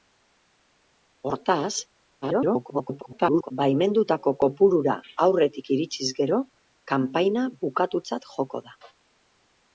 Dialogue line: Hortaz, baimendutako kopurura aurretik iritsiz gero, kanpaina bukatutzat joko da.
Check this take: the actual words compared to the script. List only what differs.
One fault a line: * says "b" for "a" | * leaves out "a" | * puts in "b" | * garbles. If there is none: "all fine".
* garbles